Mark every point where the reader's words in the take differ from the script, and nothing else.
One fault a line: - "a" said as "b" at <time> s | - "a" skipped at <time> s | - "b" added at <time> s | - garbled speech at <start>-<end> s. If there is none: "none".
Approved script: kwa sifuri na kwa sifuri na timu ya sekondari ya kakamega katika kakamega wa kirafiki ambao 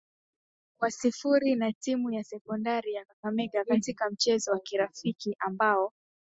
- "kwa sifuri na" skipped at 1.7 s
- "kakamega" said as "mchezo" at 4.1 s